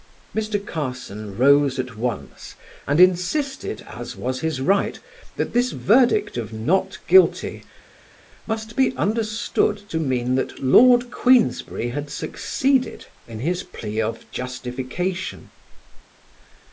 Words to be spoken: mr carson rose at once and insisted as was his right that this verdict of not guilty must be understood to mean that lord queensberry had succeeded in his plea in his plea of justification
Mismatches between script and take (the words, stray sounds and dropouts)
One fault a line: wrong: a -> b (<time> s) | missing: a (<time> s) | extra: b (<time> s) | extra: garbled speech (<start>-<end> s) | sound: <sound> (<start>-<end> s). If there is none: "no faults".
missing: in his plea (14.0 s)